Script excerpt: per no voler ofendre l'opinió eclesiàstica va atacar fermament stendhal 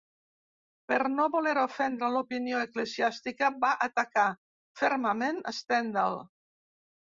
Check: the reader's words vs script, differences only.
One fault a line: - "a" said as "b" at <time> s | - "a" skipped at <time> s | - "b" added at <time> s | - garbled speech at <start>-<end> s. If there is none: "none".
none